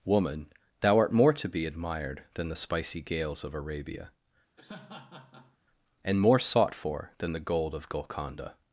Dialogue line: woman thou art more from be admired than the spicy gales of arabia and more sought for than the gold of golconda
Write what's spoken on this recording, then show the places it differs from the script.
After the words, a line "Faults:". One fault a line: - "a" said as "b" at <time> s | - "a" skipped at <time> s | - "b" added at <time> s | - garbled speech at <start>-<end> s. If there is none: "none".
woman thou art more to be admired than the spicy gales of arabia and more sought for than the gold of golconda
Faults:
- "from" said as "to" at 1.3 s